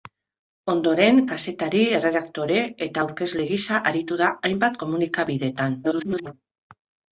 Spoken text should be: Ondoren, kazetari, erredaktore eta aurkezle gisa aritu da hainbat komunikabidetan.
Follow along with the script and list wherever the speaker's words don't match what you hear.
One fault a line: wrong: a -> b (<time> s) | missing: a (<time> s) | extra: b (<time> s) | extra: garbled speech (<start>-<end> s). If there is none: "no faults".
extra: garbled speech (5.8-6.3 s)